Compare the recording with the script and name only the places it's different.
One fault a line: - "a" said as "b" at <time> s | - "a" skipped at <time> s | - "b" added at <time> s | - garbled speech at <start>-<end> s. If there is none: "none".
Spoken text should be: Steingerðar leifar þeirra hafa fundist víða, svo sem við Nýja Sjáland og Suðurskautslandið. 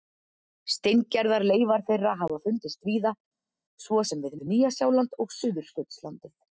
- "við" added at 4.3 s